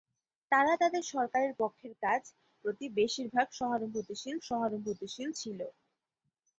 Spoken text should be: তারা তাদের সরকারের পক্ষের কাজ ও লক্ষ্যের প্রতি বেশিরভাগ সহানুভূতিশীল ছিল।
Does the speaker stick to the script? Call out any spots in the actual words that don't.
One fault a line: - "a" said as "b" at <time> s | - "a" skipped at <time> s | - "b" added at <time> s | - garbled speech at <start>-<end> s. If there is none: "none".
- "ও লক্ষ্যের" skipped at 2.2 s
- "সহানুভূতিশীল" added at 4.5 s